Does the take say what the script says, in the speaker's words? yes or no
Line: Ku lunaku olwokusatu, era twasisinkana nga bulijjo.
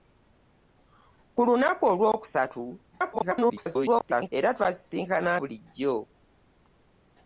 no